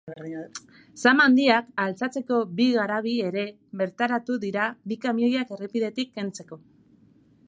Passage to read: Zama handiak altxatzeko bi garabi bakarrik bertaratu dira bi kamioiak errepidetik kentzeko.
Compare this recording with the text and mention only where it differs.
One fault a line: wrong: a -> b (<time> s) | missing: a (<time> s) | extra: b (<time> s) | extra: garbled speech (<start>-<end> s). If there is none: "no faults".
wrong: bakarrik -> ere (3.3 s)